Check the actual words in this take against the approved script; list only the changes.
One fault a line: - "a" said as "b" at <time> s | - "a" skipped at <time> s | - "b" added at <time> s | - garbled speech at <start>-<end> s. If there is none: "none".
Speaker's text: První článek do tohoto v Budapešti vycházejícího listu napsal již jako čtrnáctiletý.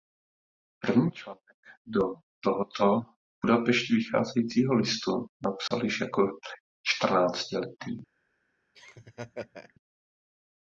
none